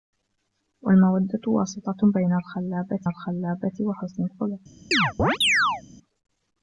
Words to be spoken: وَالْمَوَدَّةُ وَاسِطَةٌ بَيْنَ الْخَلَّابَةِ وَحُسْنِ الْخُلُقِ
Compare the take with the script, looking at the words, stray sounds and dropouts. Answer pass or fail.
fail